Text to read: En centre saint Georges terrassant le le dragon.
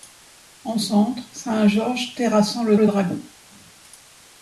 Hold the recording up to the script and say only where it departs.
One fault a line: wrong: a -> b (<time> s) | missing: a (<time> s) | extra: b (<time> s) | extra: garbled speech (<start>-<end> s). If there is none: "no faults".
no faults